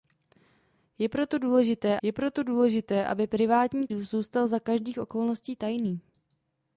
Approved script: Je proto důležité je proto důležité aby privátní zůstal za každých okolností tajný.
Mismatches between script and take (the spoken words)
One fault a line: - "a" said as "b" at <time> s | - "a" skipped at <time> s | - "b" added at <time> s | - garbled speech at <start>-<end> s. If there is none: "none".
none